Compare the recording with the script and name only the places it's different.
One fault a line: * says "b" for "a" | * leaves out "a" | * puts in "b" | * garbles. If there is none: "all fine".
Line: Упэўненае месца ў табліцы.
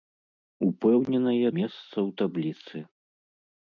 all fine